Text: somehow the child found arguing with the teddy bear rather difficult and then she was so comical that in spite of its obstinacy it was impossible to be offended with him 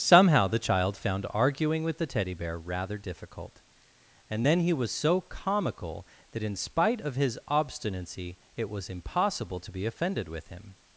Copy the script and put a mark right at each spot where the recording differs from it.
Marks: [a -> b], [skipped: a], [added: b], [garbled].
somehow the child found arguing with the teddy bear rather difficult and then [she -> he] was so comical that in spite of [its -> his] obstinacy it was impossible to be offended with him